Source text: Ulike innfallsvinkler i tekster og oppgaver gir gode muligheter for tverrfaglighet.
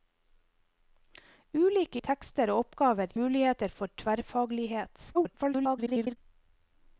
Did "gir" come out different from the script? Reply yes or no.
yes